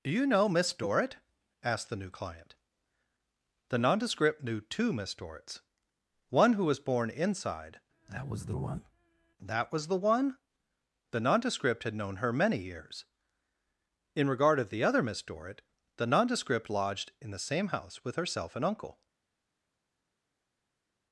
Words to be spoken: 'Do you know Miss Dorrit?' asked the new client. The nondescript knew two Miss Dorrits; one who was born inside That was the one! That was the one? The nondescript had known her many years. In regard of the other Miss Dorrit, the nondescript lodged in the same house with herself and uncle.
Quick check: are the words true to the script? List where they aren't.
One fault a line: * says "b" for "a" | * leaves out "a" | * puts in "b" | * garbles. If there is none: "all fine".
all fine